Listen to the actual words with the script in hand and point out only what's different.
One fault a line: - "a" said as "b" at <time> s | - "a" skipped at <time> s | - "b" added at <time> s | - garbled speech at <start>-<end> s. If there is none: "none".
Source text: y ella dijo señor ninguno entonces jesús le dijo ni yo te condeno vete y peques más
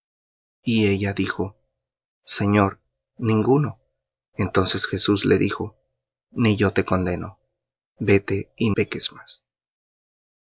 none